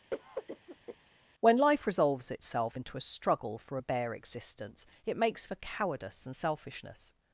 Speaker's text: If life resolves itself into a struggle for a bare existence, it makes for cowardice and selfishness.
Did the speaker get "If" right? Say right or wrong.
wrong